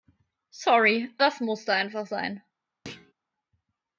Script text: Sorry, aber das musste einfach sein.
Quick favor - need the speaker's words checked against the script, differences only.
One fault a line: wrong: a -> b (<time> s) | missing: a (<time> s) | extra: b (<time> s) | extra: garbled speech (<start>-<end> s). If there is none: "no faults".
missing: aber (1.1 s)